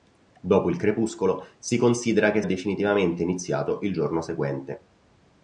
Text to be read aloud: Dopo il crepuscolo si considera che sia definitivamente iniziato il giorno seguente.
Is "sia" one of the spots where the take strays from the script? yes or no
yes